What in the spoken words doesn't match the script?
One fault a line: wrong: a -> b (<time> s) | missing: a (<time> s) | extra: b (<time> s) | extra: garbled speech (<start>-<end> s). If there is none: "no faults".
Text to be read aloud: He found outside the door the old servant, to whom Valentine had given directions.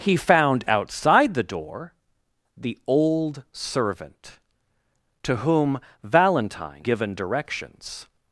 missing: had (6.8 s)